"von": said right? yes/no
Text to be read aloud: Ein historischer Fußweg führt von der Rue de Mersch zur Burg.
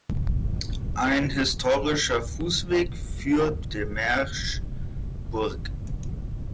no